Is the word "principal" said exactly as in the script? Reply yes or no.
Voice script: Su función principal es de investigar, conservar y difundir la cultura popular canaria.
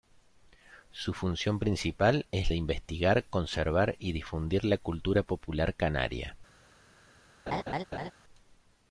yes